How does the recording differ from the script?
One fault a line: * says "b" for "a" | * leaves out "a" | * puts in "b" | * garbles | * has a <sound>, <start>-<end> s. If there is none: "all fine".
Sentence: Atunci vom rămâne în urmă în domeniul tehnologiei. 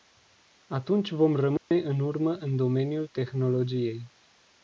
* has a dropout, 1.6-1.7 s